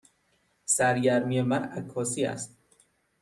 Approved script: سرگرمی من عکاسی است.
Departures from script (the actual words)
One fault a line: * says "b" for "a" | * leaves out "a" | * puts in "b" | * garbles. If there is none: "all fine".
all fine